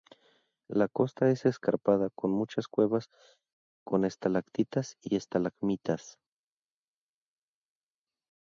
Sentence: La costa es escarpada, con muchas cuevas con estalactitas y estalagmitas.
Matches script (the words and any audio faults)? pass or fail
pass